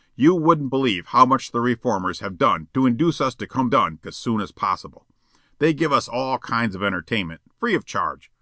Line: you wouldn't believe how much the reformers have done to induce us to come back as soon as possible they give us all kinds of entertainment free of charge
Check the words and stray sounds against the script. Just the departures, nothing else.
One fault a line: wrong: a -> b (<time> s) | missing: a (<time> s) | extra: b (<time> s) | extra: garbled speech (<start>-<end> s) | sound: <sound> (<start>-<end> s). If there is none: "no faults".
wrong: back -> done (3.7 s)